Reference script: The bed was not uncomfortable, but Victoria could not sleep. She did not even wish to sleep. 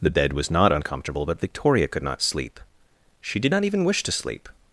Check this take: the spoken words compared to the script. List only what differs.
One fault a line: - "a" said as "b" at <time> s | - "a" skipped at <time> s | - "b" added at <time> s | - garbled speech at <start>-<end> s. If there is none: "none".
none